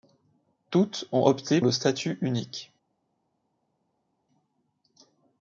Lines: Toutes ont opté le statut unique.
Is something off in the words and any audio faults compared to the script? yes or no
no